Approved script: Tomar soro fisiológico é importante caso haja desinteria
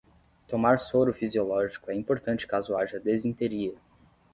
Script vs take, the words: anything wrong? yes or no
no